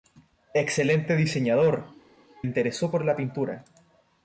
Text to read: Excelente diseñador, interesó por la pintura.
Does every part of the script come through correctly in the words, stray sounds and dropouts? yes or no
yes